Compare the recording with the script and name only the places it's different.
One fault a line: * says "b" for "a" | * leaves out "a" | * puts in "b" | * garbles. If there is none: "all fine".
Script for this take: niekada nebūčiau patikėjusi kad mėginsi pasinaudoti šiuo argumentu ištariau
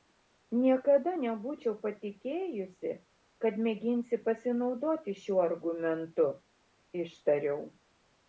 all fine